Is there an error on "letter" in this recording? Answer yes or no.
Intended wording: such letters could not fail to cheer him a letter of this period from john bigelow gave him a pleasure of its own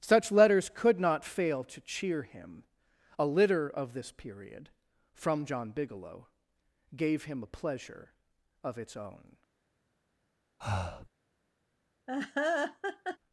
yes